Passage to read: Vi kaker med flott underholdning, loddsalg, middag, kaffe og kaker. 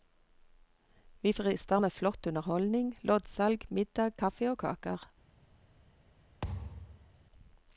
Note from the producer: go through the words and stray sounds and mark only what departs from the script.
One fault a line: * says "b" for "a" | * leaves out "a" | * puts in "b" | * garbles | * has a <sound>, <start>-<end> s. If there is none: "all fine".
* says "frister" for "kaker"
* has a thud, 6.4-7.2 s